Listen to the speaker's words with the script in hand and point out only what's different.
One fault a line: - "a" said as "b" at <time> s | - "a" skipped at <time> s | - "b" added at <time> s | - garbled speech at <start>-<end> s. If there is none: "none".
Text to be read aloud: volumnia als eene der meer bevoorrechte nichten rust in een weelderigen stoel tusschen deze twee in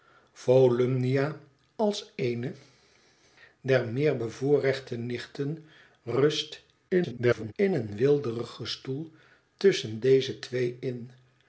- garbled speech at 6.9-7.5 s